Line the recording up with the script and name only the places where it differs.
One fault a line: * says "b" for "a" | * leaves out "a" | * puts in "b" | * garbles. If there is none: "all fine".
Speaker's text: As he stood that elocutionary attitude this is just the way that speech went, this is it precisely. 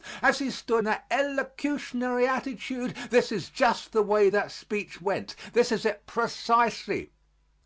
all fine